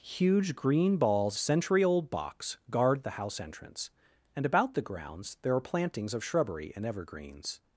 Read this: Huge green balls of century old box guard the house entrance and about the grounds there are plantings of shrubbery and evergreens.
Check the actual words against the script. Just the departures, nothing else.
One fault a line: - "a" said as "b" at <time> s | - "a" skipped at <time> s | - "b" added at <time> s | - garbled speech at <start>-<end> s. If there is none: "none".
- "of" skipped at 1.4 s